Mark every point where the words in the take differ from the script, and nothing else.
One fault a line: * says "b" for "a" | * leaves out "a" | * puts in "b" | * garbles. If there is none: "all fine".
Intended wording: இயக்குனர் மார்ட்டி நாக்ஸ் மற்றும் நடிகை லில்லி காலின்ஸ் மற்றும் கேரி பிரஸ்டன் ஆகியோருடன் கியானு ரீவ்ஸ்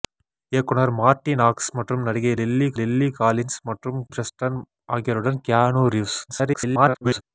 * puts in "லில்லி"
* leaves out "கேரி"
* garbles